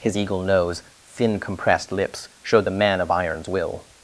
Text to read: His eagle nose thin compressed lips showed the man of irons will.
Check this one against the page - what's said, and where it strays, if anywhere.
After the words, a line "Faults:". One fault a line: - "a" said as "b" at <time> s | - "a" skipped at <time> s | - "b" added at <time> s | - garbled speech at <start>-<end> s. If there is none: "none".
His eagle nose thin compressed lips showed the man of irons will.
Faults:
none